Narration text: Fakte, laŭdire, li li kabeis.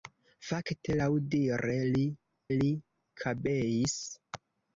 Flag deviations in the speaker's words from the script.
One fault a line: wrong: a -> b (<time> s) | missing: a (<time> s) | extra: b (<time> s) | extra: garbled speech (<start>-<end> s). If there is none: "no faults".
no faults